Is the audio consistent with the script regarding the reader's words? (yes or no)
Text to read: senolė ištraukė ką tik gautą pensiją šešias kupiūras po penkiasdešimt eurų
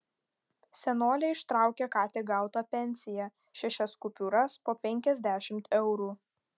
yes